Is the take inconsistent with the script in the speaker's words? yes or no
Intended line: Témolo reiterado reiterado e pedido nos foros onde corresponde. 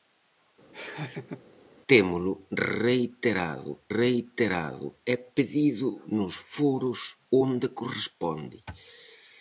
no